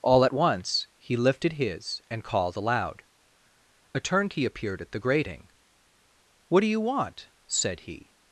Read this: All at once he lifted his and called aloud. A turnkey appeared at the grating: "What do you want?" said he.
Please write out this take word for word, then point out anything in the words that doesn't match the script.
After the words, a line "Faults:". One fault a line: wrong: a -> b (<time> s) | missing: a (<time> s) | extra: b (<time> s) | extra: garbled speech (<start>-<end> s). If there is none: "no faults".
All at once he lifted his and called aloud. A turnkey appeared at the grating: "What do you want?" said he.
Faults:
no faults